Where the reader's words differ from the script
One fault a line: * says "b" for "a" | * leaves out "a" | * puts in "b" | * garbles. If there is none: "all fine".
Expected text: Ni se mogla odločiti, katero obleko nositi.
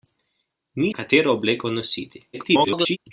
* leaves out "se mogla odločiti"
* garbles